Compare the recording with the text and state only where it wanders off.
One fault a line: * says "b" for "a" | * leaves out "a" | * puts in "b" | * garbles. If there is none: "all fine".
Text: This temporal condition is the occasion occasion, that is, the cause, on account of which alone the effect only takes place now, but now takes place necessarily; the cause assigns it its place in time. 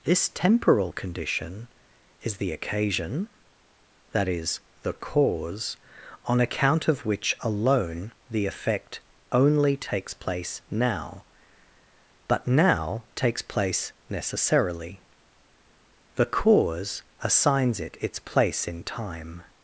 * leaves out "occasion"